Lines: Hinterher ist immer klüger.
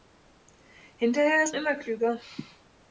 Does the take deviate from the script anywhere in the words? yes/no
no